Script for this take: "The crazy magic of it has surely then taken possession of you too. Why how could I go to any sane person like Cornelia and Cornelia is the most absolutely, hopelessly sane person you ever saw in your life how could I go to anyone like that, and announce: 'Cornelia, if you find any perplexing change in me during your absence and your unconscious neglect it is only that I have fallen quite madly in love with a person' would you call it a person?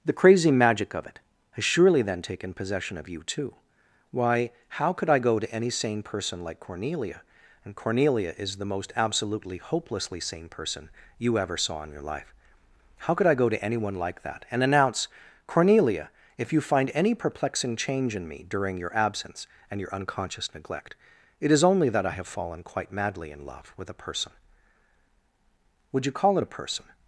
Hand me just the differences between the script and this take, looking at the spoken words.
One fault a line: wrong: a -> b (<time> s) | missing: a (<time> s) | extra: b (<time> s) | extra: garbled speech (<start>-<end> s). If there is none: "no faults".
no faults